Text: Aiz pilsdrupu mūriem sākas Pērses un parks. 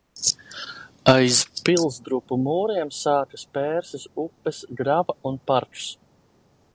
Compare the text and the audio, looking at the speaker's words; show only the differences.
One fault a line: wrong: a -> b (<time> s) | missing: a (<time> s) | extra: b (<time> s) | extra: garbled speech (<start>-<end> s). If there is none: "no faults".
extra: upes grava (4.2 s)